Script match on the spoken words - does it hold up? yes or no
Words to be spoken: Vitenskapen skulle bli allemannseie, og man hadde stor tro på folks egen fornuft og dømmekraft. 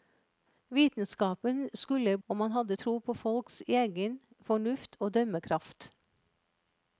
no